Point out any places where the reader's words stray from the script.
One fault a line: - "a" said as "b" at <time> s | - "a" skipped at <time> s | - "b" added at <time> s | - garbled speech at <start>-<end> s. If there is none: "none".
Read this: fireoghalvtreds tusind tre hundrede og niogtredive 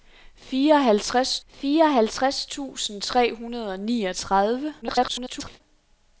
- "fireoghalvtreds" added at 1.5 s
- garbled speech at 4.8-5.6 s